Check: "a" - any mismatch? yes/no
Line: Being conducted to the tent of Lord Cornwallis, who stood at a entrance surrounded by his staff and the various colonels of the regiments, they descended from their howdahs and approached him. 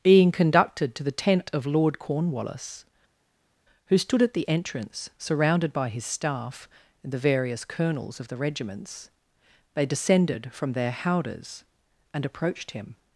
yes